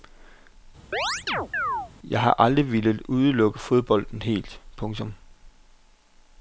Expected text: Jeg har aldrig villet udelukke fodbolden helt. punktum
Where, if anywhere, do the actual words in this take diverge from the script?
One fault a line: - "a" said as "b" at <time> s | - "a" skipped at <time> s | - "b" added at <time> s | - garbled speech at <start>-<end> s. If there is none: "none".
none